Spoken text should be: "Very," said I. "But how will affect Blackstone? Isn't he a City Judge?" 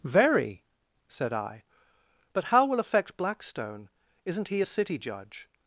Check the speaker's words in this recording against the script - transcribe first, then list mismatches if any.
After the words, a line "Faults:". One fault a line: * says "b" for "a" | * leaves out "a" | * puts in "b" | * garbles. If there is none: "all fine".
"Very," said I. "But how will affect Blackstone? Isn't he a City Judge?"
Faults:
all fine